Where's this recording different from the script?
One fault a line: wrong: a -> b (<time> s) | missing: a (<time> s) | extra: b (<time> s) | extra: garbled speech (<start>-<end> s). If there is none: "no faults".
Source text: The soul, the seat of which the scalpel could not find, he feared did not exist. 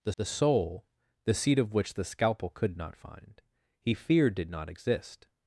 extra: the (0.2 s)